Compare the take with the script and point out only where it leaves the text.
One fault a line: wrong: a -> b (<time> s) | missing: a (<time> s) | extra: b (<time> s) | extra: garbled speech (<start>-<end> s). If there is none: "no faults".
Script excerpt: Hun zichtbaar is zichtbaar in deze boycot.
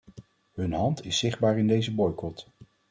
wrong: zichtbaar -> hand (0.7 s)